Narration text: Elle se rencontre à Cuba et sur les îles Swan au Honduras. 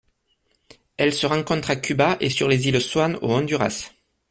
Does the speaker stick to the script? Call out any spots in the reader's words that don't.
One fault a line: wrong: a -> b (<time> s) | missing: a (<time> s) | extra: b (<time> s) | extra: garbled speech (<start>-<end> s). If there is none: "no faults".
no faults